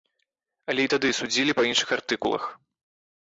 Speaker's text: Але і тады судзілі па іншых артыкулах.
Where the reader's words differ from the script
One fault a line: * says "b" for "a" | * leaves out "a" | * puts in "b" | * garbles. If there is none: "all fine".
all fine